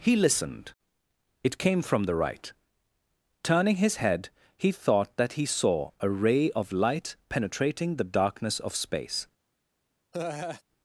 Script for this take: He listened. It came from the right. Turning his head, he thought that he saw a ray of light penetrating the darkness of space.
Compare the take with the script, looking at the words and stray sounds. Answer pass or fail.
fail